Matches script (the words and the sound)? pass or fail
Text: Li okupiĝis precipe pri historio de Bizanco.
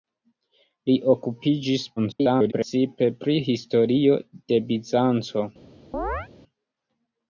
fail